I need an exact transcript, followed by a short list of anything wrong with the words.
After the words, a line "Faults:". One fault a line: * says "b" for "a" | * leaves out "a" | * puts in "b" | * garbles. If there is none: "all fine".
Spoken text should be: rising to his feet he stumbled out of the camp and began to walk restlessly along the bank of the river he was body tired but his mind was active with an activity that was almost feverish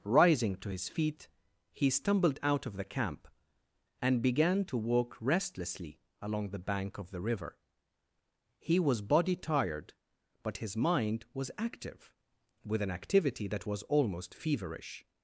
rising to his feet he stumbled out of the camp and began to walk restlessly along the bank of the river he was body tired but his mind was active with an activity that was almost feverish
Faults:
all fine